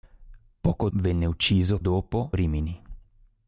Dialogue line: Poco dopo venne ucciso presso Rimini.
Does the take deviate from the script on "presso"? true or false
true